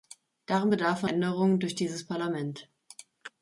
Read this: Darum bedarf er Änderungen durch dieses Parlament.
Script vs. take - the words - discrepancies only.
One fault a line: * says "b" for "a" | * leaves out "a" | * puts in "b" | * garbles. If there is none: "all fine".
all fine